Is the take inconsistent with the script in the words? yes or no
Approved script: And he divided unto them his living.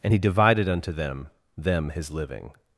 yes